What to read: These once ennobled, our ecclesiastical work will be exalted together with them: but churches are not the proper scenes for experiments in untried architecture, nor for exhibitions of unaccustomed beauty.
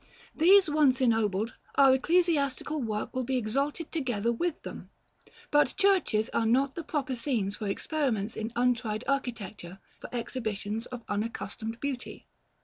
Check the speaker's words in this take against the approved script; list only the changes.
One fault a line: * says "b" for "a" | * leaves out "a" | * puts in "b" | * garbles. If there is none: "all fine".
* leaves out "nor"